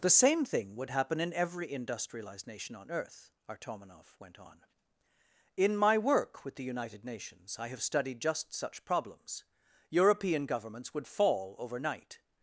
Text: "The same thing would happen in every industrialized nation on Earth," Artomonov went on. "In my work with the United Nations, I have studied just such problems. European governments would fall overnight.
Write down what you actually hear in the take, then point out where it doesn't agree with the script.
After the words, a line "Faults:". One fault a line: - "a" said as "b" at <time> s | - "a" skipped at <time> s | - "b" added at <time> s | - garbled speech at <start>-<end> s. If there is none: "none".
"The same thing would happen in every industrialized nation on Earth," Artomonov went on. "In my work with the United Nations, I have studied just such problems. European governments would fall overnight.
Faults:
none